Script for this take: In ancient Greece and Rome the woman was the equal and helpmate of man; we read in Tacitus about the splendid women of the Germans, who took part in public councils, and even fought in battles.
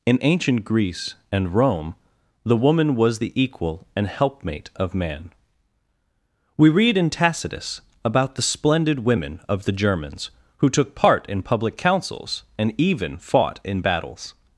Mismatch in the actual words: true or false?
false